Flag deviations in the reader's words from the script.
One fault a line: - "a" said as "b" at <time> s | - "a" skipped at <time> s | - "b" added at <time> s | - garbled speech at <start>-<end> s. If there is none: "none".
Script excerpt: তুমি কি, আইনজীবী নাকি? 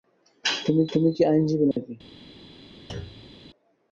- "তুমি" added at 0.9 s